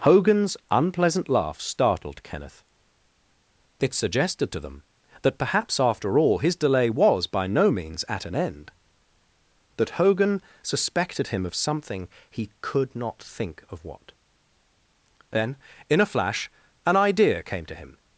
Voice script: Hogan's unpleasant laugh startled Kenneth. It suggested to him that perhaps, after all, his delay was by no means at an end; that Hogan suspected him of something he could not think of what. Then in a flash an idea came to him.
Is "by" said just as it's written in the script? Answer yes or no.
yes